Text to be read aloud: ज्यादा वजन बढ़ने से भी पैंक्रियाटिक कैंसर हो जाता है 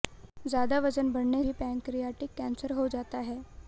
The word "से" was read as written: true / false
false